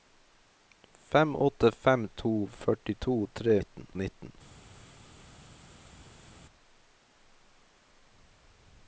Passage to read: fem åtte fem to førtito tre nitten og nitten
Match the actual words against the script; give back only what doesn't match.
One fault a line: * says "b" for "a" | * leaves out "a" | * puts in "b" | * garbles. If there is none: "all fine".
all fine